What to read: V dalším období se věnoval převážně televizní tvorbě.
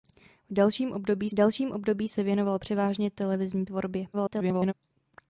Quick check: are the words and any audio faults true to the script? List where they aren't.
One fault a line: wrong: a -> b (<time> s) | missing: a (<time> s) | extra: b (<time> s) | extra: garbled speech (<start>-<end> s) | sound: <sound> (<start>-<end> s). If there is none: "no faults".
extra: dalším období (1.3 s)
extra: garbled speech (4.1-4.7 s)